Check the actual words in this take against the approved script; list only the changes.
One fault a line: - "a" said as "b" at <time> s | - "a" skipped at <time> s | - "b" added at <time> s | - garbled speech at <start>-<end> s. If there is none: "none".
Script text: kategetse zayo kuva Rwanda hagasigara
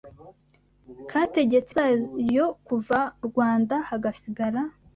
none